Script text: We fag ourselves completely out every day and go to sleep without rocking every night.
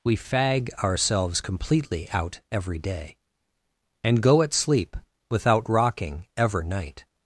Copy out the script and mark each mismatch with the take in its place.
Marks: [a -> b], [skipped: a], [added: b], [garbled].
We fag ourselves completely out every day and go [to -> at] sleep without rocking [every -> ever] night.